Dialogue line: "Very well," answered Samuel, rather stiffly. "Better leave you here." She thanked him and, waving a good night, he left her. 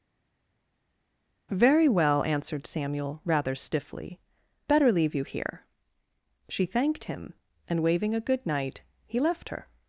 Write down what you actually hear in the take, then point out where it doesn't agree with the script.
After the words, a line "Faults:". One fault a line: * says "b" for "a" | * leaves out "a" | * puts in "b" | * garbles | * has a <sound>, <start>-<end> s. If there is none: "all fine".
"Very well," answered Samuel, rather stiffly. "Better leave you here." She thanked him and, waving a good night, he left her.
Faults:
all fine